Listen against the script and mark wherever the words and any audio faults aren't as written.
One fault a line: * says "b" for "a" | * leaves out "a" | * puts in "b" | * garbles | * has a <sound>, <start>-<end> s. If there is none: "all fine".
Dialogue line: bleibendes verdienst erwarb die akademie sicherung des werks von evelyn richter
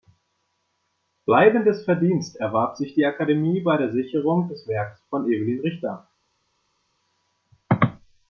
* puts in "sich"
* puts in "bei der"